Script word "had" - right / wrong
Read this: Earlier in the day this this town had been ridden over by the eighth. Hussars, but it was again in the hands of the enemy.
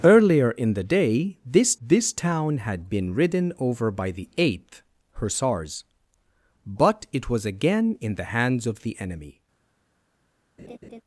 right